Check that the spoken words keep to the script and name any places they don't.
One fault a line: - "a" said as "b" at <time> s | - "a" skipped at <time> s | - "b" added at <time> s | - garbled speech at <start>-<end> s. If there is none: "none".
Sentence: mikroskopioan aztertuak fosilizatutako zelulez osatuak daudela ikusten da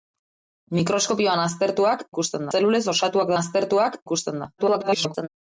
- "fosilizatutako" said as "ikusten" at 2.1 s
- "daudela" said as "aztertuak" at 3.3 s
- garbled speech at 4.6-5.3 s